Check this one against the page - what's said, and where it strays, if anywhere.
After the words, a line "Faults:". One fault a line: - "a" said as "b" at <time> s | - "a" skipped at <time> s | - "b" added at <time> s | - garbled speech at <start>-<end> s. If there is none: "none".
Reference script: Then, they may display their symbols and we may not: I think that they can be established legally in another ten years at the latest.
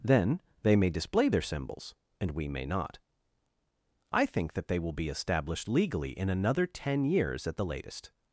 Then, they may display their symbols and we may not: I think that they will be established legally in another ten years at the latest.
Faults:
- "can" said as "will" at 4.8 s